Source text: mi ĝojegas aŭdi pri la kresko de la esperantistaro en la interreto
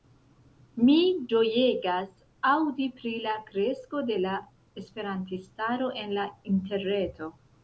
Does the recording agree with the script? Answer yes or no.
yes